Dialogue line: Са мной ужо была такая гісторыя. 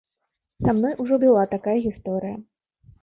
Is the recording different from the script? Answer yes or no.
no